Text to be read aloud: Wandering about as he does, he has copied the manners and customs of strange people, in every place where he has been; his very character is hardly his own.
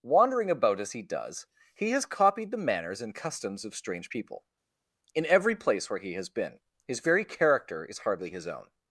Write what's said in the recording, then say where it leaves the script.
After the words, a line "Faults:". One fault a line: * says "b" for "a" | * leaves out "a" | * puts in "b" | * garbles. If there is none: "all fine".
Wandering about as he does, he has copied the manners and customs of strange people, in every place where he has been; his very character is hardly his own.
Faults:
all fine